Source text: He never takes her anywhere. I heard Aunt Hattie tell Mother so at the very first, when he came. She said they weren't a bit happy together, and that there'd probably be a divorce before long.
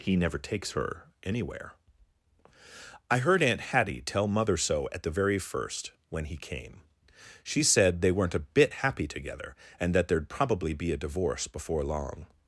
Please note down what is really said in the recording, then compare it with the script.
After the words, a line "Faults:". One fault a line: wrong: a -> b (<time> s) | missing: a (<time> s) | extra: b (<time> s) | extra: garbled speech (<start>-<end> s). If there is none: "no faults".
He never takes her anywhere. I heard Aunt Hattie tell Mother so at the very first, when he came. She said they weren't a bit happy together, and that there'd probably be a divorce before long.
Faults:
no faults